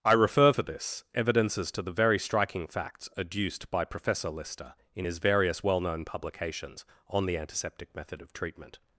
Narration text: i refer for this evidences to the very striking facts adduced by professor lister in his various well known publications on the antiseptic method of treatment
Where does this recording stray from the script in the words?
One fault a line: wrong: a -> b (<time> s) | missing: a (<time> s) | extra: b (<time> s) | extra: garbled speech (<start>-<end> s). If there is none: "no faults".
no faults